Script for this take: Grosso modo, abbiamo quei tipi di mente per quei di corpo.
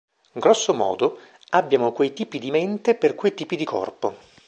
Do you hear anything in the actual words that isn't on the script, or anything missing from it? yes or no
yes